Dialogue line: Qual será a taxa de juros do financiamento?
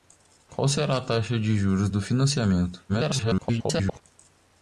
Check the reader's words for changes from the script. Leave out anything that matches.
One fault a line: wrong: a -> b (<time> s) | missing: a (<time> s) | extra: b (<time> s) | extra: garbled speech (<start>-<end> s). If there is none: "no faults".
extra: garbled speech (2.9-4.0 s)